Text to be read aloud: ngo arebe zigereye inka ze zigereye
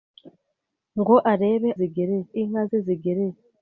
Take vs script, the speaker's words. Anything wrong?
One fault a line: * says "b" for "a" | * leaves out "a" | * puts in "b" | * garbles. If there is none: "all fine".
all fine